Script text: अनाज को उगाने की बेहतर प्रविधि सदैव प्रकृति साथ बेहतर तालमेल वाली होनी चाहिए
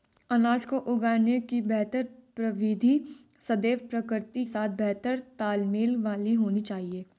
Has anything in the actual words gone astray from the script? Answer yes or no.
no